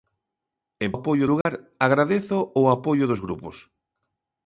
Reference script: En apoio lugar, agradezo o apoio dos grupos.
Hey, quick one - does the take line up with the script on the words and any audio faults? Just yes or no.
no